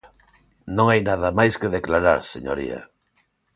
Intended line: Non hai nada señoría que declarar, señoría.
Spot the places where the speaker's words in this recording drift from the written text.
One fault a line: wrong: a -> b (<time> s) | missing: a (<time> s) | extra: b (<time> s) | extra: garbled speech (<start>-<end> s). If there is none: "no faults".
wrong: señoría -> máis (1.4 s)